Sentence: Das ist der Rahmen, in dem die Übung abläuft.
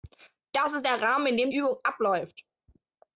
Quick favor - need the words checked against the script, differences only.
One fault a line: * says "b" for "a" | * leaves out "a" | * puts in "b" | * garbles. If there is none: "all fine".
* leaves out "die"